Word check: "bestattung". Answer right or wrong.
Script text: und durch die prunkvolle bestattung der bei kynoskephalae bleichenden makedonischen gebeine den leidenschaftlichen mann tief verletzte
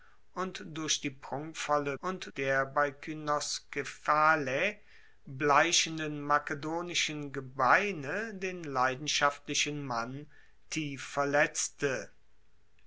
wrong